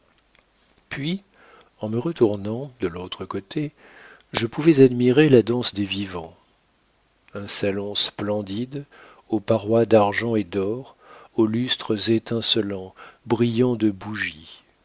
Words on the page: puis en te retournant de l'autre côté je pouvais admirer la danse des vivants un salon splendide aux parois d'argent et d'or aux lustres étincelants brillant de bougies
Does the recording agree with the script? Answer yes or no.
no